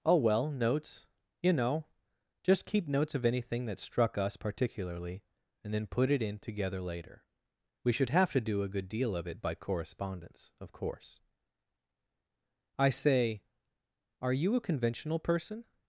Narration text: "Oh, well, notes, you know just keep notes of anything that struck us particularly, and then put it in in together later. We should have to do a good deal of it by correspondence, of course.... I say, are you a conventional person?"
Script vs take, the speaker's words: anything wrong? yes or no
yes